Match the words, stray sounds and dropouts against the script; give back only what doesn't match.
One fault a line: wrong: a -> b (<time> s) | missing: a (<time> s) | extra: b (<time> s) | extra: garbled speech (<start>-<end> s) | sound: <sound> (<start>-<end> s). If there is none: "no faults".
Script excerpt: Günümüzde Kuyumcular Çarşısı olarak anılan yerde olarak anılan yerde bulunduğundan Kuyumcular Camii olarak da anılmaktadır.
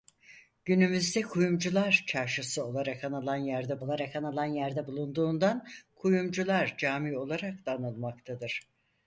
no faults